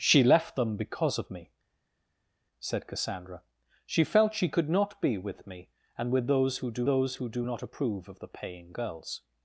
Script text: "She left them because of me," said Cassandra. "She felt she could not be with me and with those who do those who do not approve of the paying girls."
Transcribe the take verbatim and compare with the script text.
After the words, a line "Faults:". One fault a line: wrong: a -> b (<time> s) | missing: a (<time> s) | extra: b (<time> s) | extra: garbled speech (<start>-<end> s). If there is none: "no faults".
"She left them because of me," said Cassandra. "She felt she could not be with me and with those who do those who do not approve of the paying girls."
Faults:
no faults